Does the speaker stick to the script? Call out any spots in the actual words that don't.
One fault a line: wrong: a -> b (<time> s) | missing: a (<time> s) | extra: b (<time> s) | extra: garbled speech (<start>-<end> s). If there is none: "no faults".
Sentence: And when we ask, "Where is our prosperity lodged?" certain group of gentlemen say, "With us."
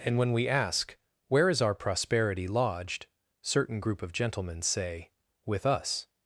no faults